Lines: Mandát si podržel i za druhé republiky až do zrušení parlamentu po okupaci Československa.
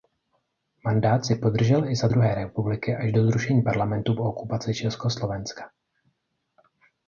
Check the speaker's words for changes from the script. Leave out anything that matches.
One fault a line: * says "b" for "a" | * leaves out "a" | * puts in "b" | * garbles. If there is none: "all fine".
all fine